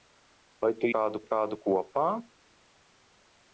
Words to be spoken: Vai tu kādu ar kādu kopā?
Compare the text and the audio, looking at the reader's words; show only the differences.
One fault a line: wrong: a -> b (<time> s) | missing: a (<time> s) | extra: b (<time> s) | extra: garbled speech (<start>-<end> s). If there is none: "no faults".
no faults